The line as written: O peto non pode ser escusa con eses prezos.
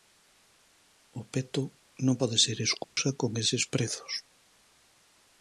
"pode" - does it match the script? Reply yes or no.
yes